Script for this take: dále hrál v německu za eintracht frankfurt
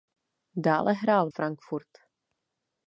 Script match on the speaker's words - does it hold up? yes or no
no